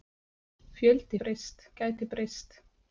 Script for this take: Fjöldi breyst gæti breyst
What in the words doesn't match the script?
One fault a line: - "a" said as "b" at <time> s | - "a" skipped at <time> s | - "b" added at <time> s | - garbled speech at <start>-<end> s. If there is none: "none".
none